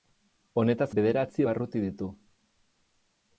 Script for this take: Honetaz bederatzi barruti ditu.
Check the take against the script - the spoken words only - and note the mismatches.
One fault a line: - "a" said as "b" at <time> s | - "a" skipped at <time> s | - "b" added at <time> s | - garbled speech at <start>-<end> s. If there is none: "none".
none